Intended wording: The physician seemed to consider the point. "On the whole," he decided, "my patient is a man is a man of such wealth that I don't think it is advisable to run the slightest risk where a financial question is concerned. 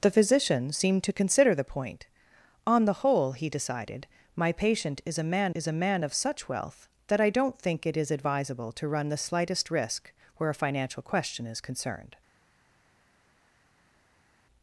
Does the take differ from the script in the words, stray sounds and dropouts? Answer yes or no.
no